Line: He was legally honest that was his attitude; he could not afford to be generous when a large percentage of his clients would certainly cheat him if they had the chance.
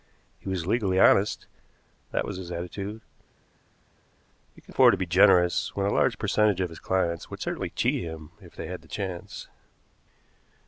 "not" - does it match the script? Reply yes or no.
no